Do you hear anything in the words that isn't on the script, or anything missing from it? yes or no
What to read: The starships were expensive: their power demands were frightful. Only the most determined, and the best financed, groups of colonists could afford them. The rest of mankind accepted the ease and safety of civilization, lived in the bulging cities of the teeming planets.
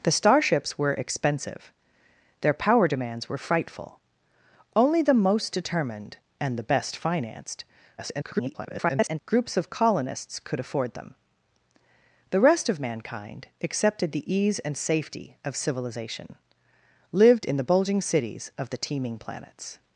yes